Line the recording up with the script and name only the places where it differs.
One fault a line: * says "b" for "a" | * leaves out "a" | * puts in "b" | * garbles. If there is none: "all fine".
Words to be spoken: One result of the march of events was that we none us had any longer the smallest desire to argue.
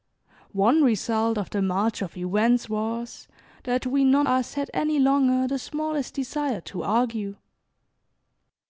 all fine